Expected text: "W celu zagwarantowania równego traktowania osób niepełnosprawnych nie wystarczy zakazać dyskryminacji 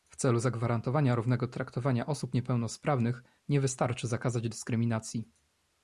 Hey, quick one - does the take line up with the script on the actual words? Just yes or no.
yes